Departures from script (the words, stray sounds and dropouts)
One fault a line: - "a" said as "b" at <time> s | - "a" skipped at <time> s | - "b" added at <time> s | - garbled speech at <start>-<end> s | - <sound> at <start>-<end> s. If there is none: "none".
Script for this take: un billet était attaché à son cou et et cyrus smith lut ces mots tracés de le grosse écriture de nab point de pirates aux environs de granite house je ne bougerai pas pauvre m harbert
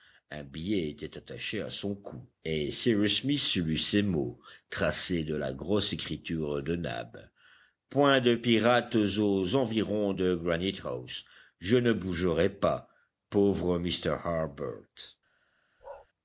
- "et" skipped at 2.7 s
- "le" said as "la" at 5.3 s
- bark at 15.8-16.1 s